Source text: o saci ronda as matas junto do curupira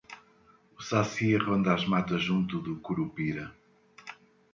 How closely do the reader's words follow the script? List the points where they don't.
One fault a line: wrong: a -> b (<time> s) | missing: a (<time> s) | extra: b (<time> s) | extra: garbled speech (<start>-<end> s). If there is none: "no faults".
no faults